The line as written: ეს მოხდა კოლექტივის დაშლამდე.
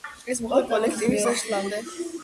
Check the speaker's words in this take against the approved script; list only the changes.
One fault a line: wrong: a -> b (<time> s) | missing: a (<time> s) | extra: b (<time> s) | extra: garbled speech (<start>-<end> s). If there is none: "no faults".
no faults